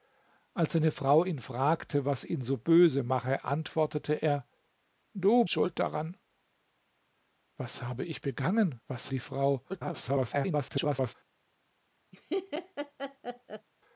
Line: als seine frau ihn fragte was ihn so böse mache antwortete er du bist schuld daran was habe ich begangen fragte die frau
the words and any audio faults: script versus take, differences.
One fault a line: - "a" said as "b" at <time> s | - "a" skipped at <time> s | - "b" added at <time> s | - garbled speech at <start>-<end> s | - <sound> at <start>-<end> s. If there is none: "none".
- "bist" skipped at 5.4 s
- "fragte" said as "was" at 8.9 s
- garbled speech at 9.7-11.1 s
- laugh at 12.1-13.7 s